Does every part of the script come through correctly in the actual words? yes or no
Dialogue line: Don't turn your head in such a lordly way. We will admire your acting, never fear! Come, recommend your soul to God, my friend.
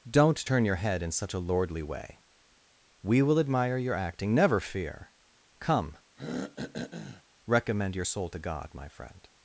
yes